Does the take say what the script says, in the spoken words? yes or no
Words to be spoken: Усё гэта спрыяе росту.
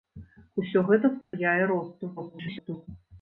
no